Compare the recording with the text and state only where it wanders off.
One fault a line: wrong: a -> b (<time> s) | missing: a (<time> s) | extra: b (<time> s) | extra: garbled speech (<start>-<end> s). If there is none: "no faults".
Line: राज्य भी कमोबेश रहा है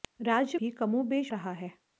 no faults